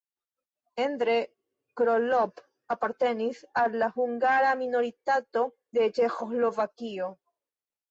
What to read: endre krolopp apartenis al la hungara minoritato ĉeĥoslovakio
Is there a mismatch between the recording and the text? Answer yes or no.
yes